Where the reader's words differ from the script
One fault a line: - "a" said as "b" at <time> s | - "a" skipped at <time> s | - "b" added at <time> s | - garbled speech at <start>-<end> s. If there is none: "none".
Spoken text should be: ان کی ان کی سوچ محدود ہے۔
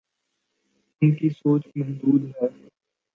- "ان کی" skipped at 1.3 s